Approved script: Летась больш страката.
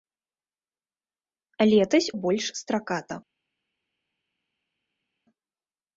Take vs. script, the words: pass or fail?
pass